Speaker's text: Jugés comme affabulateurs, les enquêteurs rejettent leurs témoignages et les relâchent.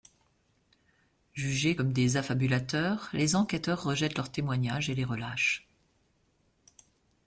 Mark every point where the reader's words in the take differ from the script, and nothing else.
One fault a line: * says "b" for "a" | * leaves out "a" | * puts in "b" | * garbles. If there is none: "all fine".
* puts in "des"